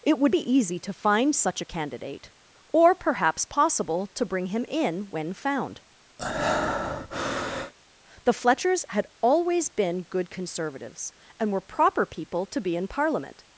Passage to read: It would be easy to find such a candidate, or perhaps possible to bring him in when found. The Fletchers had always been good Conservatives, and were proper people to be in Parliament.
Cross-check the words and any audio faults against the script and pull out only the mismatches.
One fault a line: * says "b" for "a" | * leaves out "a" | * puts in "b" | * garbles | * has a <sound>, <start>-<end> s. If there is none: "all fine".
* has a breath, 6.2-7.7 s